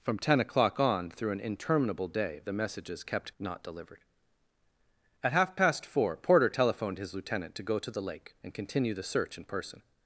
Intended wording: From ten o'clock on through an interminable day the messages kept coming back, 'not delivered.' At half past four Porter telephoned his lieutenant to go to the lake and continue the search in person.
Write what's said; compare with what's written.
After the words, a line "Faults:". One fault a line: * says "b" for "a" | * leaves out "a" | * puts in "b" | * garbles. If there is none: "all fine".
From ten o'clock on through an interminable day the messages kept 'not delivered.' At half past four Porter telephoned his lieutenant to go to the lake and continue the search in person.
Faults:
* leaves out "coming back"